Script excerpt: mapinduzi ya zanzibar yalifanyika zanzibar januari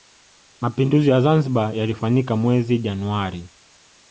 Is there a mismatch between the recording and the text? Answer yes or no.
yes